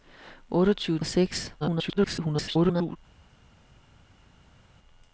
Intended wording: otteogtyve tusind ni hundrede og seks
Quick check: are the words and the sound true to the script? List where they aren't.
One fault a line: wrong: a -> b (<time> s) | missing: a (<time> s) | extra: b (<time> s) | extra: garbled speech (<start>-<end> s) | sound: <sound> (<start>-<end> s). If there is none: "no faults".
missing: tusind ni hundrede (1.0 s)
extra: garbled speech (1.6-3.0 s)